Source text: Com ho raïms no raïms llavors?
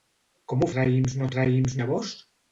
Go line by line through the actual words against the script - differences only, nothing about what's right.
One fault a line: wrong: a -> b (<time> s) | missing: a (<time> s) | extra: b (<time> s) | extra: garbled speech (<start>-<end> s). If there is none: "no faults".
no faults